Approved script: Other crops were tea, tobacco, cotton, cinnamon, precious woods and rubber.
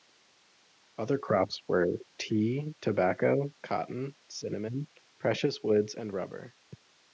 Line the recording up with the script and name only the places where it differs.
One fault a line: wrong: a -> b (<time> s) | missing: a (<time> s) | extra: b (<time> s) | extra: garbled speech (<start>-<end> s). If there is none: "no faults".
no faults